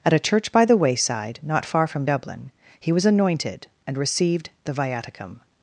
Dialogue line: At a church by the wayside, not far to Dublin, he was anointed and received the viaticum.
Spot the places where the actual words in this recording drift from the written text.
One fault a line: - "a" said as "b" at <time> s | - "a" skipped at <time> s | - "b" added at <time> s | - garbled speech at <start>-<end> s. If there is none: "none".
- "to" said as "from" at 1.9 s